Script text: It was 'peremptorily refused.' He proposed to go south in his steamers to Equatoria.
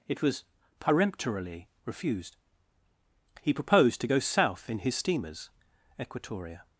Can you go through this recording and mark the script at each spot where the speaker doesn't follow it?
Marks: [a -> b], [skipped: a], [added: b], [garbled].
It was 'peremptorily refused.' He proposed to go south in his steamers [skipped: to] Equatoria.